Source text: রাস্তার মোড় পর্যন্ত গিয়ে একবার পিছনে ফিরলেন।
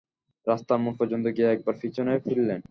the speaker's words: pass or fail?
pass